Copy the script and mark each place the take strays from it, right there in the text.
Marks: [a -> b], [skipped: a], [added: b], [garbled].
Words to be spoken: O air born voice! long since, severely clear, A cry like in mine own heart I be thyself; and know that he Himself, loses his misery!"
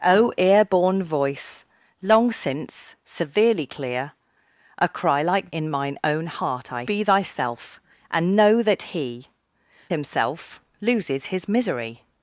O air born voice! long since, severely clear, A cry like in mine own heart I be thyself; and know that he Himself, loses his misery!"